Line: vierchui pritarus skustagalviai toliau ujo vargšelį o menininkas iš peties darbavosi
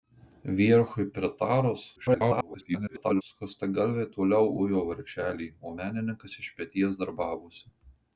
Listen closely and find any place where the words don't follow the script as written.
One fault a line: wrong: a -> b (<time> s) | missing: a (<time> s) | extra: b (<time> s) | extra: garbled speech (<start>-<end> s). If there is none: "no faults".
extra: garbled speech (2.0-3.2 s)